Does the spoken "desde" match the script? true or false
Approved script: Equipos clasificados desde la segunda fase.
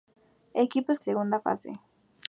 false